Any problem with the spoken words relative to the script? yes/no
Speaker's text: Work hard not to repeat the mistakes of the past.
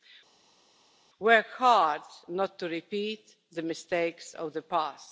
no